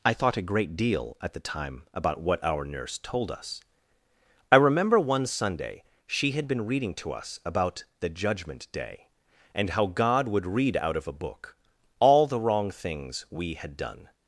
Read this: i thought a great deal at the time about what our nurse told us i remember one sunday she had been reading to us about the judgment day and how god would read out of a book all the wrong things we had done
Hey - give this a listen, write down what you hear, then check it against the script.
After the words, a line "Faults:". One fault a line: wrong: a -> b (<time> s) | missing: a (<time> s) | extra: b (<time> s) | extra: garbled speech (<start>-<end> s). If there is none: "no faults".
i thought a great deal at the time about what our nurse told us i remember one sunday she had been reading to us about the judgment day and how god would read out of a book all the wrong things we had done
Faults:
no faults